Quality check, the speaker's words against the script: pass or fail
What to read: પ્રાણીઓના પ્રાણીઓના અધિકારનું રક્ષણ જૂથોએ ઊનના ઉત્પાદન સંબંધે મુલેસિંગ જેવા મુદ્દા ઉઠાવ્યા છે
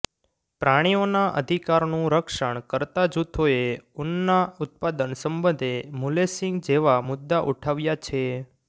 fail